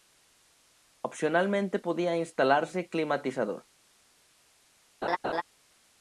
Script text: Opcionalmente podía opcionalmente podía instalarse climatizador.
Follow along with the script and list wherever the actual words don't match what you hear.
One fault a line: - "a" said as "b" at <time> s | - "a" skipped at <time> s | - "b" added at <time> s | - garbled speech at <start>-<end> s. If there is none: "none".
- "opcionalmente podía" skipped at 2.1 s